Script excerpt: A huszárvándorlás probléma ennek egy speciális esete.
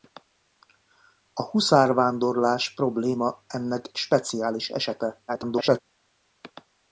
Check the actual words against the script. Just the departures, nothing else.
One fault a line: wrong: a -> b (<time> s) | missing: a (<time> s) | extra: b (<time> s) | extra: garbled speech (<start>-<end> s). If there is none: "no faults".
missing: egy (3.9 s)
extra: garbled speech (5.3-5.8 s)